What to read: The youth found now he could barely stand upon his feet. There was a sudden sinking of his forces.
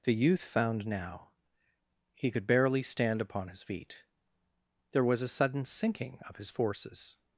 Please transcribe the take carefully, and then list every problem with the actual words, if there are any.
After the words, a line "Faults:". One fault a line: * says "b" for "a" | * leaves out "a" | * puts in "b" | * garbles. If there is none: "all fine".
The youth found now he could barely stand upon his feet. There was a sudden sinking of his forces.
Faults:
all fine